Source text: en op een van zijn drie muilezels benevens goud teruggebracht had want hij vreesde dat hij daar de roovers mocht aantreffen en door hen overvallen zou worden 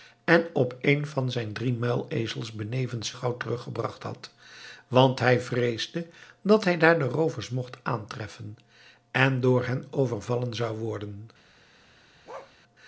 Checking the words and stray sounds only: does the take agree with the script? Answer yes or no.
no